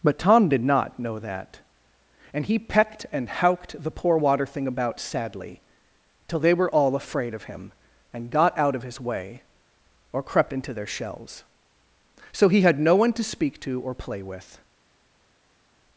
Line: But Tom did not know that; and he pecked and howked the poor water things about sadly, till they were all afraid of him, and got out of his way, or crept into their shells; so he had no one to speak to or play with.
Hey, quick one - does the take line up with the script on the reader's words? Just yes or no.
no